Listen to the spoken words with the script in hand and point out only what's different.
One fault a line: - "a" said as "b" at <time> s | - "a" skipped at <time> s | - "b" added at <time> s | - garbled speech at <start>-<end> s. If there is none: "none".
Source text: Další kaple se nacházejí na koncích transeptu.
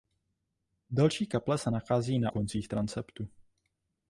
none